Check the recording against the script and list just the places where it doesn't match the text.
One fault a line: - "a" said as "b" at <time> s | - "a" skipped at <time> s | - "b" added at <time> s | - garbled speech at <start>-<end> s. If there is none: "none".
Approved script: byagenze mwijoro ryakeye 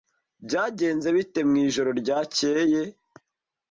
- "bite" added at 1.1 s